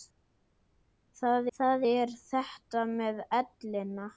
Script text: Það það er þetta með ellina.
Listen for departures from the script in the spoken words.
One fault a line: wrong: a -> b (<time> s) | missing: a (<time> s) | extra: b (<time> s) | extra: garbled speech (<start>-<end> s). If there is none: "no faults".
no faults